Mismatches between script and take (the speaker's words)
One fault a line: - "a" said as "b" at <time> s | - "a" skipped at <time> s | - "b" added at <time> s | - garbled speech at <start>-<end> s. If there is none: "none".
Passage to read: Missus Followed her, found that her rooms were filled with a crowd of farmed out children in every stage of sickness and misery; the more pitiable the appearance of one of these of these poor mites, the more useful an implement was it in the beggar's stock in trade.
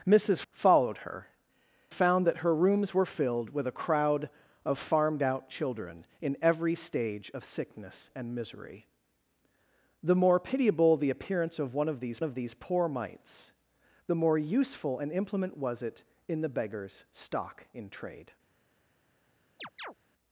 none